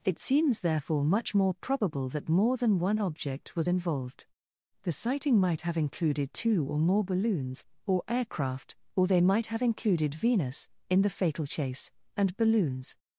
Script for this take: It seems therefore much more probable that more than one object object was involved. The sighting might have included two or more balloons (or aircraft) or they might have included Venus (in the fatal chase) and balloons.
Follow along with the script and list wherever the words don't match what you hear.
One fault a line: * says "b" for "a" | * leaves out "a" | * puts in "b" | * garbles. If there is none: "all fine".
* leaves out "object"